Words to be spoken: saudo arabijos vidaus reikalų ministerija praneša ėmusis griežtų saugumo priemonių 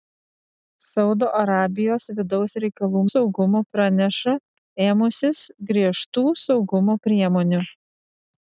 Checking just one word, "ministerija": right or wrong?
wrong